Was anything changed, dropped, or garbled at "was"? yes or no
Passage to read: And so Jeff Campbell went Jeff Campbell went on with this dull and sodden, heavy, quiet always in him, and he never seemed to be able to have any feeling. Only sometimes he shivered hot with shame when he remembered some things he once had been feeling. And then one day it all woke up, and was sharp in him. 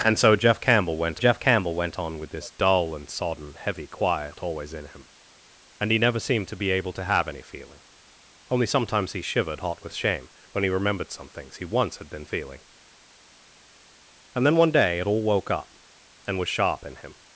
no